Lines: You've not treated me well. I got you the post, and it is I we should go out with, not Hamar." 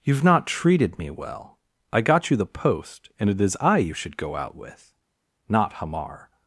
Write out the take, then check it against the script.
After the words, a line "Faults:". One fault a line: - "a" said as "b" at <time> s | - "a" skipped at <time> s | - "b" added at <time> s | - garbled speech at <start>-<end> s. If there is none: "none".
You've not treated me well. I got you the post, and it is I you should go out with, not Hamar."
Faults:
- "we" said as "you" at 3.8 s